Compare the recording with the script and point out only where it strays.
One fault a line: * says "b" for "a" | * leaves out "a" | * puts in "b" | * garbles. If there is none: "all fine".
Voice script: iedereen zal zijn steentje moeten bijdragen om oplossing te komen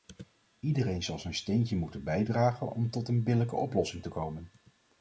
* puts in "tot een billijke"